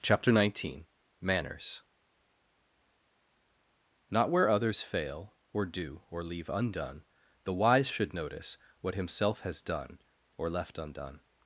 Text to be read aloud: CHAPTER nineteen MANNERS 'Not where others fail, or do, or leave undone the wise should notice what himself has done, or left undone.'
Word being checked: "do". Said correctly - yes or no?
yes